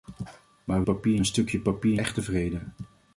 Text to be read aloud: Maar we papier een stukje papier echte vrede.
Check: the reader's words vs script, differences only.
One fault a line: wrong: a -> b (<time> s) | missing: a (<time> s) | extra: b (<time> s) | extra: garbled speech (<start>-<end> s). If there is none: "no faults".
no faults